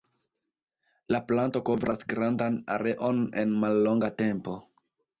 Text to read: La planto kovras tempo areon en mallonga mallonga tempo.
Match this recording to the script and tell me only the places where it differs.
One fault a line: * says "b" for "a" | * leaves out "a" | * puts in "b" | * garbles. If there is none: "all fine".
* says "grandan" for "tempo"
* leaves out "mallonga"